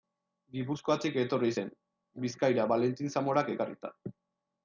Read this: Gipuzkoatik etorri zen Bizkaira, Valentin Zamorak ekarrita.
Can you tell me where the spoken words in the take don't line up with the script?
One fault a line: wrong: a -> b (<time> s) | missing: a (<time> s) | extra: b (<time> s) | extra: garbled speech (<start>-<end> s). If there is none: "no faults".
no faults